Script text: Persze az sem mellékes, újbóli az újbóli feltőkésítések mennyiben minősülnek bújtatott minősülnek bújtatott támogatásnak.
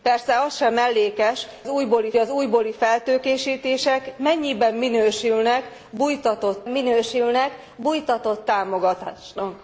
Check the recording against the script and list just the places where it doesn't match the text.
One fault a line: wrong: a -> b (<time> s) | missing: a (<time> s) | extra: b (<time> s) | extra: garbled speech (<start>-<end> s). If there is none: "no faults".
no faults